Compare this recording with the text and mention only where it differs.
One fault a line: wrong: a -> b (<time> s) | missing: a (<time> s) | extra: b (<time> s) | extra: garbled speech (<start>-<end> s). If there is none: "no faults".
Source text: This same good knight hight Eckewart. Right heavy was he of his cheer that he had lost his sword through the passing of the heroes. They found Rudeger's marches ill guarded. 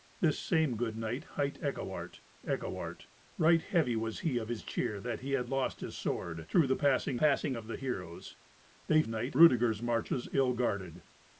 extra: Eckewart (2.5 s)
extra: passing (7.1 s)
wrong: found -> knight (9.1 s)